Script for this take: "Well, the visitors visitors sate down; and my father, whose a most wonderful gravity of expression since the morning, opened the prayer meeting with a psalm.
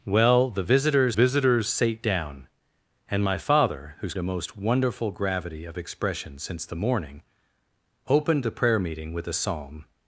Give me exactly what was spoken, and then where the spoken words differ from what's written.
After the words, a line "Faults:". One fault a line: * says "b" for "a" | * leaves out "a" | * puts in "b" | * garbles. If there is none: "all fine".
"Well, the visitors visitors sate down; and my father, whose a most wonderful gravity of expression since the morning, opened the prayer meeting with a psalm.
Faults:
all fine